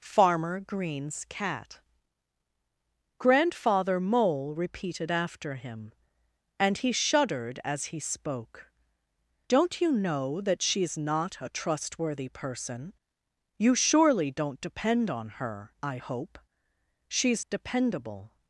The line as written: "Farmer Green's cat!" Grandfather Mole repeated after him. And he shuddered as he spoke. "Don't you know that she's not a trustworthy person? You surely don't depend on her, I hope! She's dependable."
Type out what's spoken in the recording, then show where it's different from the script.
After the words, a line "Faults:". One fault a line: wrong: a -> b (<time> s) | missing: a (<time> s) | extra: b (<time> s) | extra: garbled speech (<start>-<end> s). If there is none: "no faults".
"Farmer Green's cat!" Grandfather Mole repeated after him. And he shuddered as he spoke. "Don't you know that she's not a trustworthy person? You surely don't depend on her, I hope! She's dependable."
Faults:
no faults